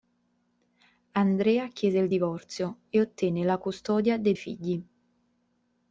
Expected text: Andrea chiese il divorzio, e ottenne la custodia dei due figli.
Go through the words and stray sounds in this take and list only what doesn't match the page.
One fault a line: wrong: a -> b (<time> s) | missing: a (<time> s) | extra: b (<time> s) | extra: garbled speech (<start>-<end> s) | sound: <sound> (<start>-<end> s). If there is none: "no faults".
missing: due (4.3 s)